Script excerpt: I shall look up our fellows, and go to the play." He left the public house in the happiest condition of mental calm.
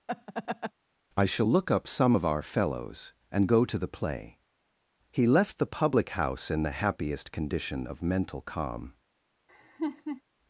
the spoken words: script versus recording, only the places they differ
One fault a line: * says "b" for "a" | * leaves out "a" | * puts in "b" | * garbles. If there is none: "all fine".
* puts in "some of"